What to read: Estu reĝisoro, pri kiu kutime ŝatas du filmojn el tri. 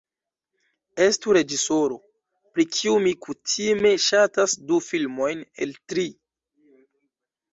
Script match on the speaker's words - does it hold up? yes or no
no